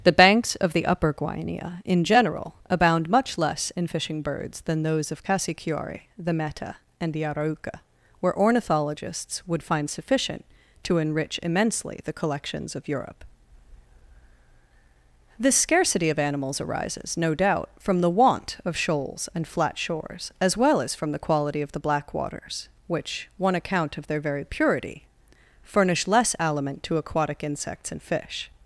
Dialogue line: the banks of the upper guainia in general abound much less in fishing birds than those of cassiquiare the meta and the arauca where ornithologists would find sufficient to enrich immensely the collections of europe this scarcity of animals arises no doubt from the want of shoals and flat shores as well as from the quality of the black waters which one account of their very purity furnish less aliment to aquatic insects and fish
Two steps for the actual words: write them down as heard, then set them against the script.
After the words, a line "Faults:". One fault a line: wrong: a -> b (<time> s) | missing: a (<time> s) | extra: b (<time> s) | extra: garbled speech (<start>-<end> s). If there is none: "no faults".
the banks of the upper guainia in general abound much less in fishing birds than those of cassiquiare the meta and the arauca where ornithologists would find sufficient to enrich immensely the collections of europe this scarcity of animals arises no doubt from the want of shoals and flat shores as well as from the quality of the black waters which one account of their very purity furnish less aliment to aquatic insects and fish
Faults:
no faults